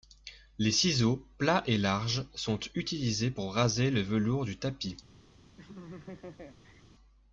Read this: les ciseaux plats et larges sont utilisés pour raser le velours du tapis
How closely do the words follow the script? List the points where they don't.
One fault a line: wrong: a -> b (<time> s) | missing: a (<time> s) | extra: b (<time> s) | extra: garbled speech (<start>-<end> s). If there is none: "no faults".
no faults